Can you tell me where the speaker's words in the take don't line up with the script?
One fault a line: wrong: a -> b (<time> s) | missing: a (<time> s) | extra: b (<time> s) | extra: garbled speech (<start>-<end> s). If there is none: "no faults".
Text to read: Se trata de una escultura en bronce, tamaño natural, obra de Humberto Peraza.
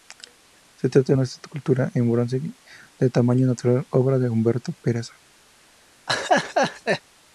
extra: de (3.0 s)